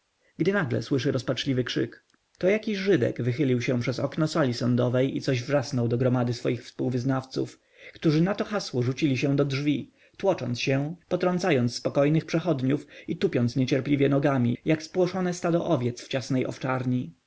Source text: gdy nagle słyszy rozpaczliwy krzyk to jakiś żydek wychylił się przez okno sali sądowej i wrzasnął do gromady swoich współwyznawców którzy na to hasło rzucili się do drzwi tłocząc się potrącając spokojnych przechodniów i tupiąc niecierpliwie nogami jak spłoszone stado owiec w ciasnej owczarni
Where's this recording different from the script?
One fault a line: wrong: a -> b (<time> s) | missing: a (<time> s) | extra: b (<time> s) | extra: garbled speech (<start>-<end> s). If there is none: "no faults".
extra: coś (5.2 s)